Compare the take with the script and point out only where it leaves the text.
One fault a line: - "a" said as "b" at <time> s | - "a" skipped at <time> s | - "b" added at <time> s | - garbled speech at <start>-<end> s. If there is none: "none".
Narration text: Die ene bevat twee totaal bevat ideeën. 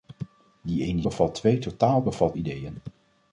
none